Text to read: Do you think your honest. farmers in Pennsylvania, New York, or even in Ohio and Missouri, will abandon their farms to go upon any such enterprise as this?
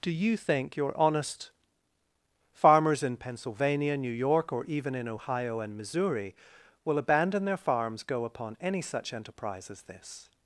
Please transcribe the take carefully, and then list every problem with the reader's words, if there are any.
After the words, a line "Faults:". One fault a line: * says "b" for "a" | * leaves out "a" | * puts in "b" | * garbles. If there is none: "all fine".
Do you think your honest. farmers in Pennsylvania, New York, or even in Ohio and Missouri, will abandon their farms go upon any such enterprise as this?
Faults:
* leaves out "to"